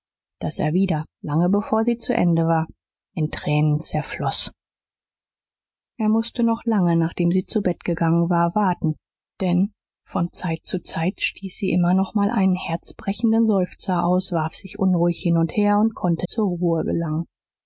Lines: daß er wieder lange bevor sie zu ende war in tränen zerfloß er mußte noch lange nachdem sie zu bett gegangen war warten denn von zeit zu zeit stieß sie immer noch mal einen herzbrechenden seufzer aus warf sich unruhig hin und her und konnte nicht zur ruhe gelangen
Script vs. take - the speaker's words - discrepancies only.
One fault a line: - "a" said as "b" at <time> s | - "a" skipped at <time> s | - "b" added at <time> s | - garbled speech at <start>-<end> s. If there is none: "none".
- "nicht" skipped at 16.3 s